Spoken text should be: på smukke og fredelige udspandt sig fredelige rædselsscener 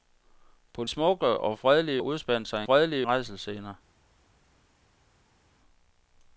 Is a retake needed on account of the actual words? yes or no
no